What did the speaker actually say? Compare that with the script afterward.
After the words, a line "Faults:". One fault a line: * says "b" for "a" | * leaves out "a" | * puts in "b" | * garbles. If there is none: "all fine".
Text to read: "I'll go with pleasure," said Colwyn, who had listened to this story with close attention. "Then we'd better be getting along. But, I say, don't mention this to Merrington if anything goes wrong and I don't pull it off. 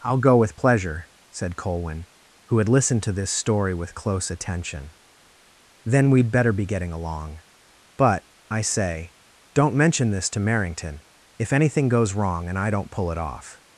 "I'll go with pleasure," said Colwyn, who had listened to this story with close attention. "Then we'd better be getting along. But, I say, don't mention this to Merrington if anything goes wrong and I don't pull it off.
Faults:
all fine